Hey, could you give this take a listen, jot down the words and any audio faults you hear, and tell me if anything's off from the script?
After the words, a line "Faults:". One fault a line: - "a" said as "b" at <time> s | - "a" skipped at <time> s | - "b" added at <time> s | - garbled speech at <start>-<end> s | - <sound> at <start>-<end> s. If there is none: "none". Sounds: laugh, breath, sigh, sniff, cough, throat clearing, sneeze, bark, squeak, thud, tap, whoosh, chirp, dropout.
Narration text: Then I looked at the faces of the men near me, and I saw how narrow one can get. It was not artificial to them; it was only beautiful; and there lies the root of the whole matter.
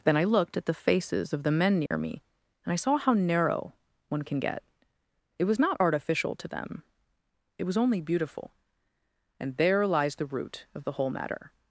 Then I looked at the faces of the men near me, and I saw how narrow one can get. It was not artificial to them; it was only beautiful; and there lies the root of the whole matter.
Faults:
- dropout at 1.9-1.9 s